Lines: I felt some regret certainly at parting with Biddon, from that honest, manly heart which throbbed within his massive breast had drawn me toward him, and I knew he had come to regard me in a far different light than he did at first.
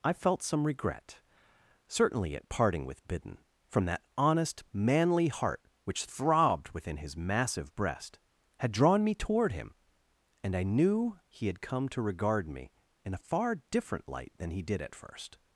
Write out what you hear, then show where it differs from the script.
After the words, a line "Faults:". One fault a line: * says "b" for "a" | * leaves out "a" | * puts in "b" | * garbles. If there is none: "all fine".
I felt some regret certainly at parting with Biddon, from that honest, manly heart which throbbed within his massive breast had drawn me toward him, and I knew he had come to regard me in a far different light than he did at first.
Faults:
all fine